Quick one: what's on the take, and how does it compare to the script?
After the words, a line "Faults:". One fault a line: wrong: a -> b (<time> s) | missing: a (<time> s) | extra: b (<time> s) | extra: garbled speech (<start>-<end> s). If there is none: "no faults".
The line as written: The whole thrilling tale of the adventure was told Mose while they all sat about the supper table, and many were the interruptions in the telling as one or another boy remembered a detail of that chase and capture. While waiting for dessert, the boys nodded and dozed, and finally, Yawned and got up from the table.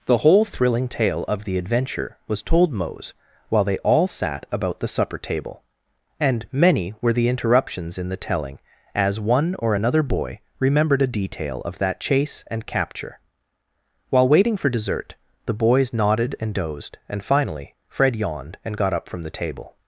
The whole thrilling tale of the adventure was told Mose while they all sat about the supper table, and many were the interruptions in the telling as one or another boy remembered a detail of that chase and capture. While waiting for dessert, the boys nodded and dozed, and finally, Fred yawned and got up from the table.
Faults:
extra: Fred (17.9 s)